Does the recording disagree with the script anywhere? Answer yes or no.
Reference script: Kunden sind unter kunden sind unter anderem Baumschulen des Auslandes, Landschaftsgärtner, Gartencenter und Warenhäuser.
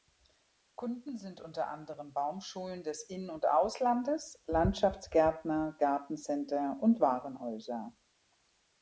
yes